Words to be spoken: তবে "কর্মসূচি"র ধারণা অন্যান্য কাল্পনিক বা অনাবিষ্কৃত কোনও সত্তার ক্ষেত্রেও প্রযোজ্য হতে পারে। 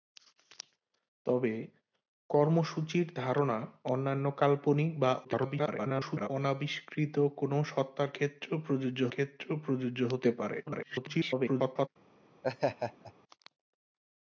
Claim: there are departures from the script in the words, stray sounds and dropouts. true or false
true